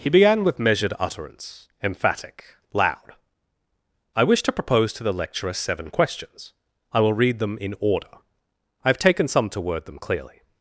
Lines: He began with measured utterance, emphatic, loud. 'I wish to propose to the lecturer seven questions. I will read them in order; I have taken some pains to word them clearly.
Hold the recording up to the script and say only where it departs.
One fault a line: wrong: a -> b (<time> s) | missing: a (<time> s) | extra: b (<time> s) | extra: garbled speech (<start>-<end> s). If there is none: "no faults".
missing: pains (9.5 s)